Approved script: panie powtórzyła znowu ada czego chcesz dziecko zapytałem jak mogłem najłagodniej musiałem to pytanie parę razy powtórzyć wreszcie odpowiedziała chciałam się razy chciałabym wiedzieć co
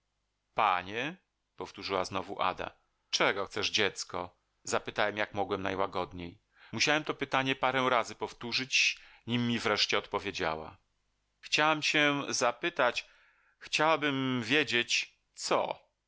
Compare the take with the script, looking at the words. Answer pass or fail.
fail